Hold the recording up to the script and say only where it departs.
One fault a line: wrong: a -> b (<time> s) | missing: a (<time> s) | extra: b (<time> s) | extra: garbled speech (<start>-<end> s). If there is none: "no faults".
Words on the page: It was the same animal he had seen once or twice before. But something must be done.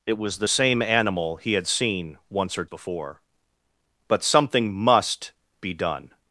missing: twice (2.7 s)